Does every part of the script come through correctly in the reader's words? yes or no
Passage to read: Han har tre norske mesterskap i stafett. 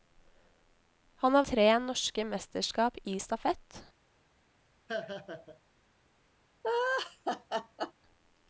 yes